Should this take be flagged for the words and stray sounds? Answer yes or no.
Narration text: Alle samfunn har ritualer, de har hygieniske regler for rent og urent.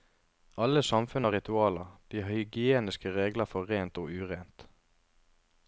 no